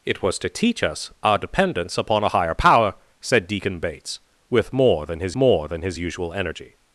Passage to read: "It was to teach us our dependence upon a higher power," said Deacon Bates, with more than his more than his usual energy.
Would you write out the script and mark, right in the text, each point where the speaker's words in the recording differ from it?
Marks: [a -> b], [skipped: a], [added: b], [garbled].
"It was to teach us our dependence upon a higher power," said Deacon Bates, with more than his more than his usual energy.